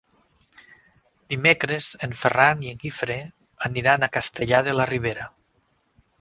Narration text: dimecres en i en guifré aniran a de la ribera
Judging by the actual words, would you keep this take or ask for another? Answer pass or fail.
fail